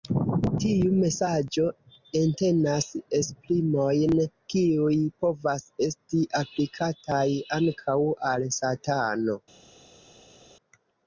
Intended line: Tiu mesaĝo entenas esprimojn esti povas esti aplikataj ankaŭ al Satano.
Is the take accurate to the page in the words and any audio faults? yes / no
no